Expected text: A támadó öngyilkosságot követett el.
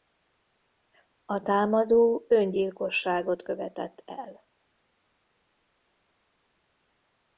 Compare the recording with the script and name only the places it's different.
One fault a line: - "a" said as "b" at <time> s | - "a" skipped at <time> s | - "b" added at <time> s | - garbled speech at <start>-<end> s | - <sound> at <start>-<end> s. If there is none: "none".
none